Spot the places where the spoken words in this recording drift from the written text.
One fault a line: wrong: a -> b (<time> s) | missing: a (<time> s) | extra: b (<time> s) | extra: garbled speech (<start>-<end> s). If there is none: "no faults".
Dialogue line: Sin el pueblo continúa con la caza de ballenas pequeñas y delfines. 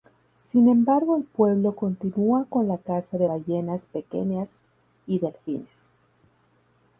extra: embargo (0.7 s)